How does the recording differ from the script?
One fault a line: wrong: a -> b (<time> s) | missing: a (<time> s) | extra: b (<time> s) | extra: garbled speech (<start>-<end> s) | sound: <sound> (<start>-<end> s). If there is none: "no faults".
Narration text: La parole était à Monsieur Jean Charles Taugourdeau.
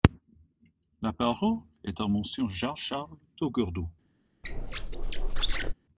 wrong: était -> est (1.8 s)
sound: squeak (4.4-5.7 s)